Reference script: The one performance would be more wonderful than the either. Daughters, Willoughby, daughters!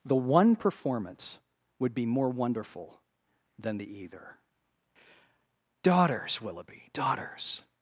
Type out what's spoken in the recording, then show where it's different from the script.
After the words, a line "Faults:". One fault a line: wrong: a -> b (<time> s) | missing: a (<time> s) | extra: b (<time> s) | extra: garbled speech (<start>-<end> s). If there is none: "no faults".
The one performance would be more wonderful than the either. Daughters, Willoughby, daughters!
Faults:
no faults